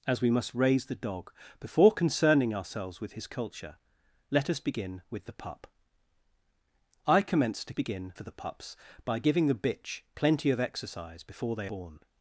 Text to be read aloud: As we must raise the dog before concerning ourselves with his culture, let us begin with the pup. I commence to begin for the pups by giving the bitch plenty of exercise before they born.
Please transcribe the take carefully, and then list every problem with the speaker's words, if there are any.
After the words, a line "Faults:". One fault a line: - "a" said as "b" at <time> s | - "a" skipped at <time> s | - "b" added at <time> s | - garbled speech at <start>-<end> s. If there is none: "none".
As we must raise the dog before concerning ourselves with his culture, let us begin with the pup. I commence to begin for the pups by giving the bitch plenty of exercise before they born.
Faults:
none